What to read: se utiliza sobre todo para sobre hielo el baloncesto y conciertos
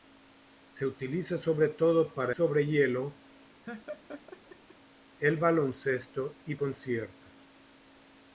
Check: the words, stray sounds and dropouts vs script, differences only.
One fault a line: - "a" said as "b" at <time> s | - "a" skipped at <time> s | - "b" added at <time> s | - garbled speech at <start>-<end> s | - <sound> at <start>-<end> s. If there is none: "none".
- laugh at 3.7-4.8 s